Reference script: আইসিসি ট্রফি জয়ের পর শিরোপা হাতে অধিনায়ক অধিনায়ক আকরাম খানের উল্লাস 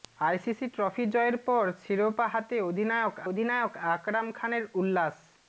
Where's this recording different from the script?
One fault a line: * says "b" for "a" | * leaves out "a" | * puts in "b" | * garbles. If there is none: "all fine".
all fine